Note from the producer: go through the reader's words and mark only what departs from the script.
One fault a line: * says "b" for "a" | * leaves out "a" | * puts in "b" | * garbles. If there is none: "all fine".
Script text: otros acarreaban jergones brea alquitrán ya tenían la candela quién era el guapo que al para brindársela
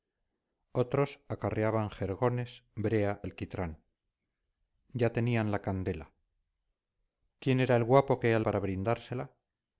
all fine